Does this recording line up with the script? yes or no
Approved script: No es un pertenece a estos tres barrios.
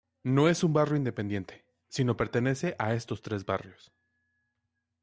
no